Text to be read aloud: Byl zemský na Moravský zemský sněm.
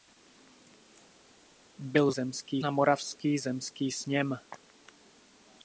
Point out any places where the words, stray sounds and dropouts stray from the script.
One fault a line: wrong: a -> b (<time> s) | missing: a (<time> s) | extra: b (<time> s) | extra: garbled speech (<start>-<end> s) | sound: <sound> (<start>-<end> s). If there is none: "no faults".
no faults